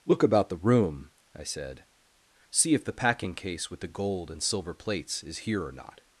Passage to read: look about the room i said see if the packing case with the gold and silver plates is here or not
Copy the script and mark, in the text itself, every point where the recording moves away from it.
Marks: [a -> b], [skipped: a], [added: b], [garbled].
look about the room i said see if the packing case with the gold and silver plates is here or not